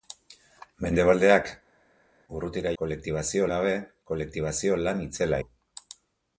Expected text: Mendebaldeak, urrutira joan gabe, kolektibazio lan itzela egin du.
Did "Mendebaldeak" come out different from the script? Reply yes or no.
no